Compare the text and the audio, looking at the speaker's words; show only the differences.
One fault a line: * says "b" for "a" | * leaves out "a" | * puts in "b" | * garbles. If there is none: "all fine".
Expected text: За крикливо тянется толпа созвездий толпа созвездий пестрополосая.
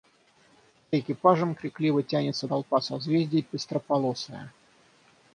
* puts in "экипажем"
* leaves out "толпа созвездий"